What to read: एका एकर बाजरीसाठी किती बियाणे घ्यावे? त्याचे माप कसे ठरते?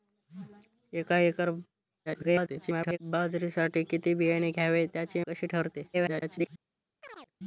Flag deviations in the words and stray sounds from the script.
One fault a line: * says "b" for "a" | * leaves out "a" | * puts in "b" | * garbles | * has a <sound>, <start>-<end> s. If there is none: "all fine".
* garbles
* leaves out "माप"
* garbles
* has a chirp, 7.0-7.3 s